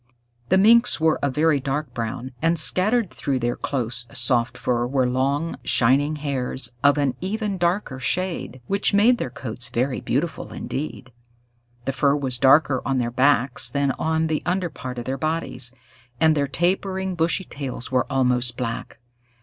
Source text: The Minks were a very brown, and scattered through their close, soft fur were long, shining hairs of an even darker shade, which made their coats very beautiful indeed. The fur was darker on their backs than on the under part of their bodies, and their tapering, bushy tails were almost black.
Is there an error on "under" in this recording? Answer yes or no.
no